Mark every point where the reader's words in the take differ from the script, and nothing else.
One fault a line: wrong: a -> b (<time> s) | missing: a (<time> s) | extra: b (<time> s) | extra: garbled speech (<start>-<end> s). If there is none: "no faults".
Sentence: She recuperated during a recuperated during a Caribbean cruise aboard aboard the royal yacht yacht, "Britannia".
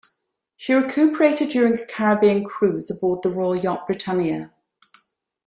missing: recuperated during a (1.9 s)
missing: aboard (3.2 s)
missing: yacht (3.9 s)